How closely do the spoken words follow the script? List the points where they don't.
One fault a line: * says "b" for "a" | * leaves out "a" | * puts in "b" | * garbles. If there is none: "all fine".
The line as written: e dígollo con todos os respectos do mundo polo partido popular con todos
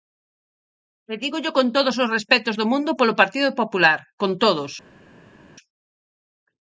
all fine